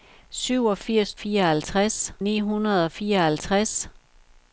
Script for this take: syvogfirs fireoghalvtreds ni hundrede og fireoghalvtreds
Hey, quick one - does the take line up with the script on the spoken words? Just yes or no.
yes